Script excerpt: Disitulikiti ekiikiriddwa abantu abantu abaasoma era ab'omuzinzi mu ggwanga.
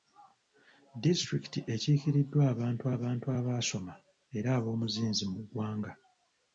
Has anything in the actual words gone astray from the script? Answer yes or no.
no